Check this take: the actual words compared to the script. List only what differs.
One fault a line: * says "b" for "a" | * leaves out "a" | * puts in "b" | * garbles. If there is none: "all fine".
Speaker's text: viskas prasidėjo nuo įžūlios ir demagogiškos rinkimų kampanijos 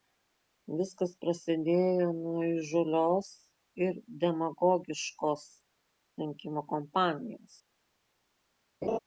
all fine